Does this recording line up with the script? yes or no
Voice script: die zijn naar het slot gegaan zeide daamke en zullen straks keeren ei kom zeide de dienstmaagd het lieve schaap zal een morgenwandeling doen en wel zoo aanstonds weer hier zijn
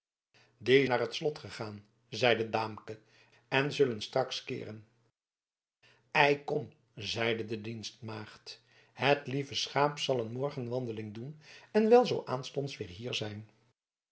no